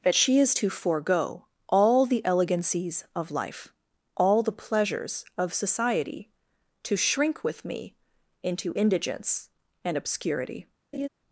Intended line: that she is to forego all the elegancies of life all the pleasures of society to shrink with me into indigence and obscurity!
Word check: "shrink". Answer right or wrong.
right